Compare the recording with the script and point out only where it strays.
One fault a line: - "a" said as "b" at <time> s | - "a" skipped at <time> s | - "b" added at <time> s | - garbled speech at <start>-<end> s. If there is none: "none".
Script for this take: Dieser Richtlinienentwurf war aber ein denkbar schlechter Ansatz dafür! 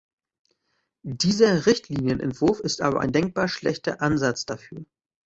- "war" said as "ist" at 2.6 s